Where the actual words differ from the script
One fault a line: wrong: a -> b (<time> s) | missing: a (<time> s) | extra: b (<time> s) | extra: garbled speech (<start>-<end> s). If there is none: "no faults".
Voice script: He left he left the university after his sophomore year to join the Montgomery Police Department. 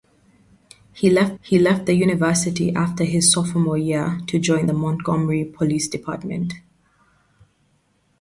no faults